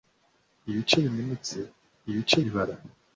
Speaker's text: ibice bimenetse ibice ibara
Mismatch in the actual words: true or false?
false